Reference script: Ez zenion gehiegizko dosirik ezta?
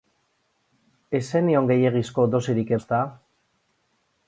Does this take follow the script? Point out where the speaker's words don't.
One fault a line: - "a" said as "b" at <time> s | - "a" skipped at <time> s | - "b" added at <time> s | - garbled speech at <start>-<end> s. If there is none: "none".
none